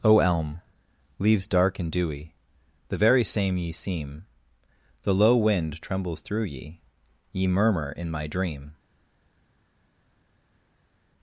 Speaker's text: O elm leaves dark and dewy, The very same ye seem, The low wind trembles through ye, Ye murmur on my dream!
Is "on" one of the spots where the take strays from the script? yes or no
yes